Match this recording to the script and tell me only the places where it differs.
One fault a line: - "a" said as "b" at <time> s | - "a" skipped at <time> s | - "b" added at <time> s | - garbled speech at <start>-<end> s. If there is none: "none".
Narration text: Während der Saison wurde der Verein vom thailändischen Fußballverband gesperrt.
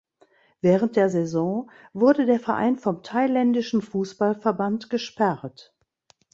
none